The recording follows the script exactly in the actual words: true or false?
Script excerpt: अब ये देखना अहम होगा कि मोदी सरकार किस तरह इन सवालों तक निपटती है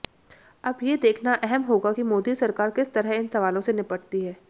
false